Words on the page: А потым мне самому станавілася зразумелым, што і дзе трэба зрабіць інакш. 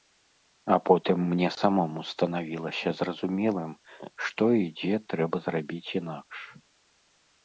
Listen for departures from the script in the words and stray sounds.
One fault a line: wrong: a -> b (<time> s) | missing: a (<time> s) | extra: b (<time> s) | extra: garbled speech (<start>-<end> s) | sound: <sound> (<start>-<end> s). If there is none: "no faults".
no faults